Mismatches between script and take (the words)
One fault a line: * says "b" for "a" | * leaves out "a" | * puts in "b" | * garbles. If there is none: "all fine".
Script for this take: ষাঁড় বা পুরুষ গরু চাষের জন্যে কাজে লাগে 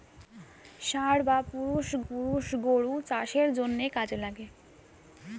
* puts in "পুরুষ"